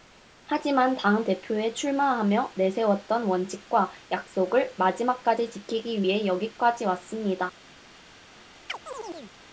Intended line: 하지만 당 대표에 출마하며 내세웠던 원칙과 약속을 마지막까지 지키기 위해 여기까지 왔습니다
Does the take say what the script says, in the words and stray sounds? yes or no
no